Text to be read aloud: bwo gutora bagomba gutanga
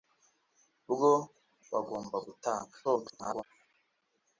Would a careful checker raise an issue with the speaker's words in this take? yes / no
yes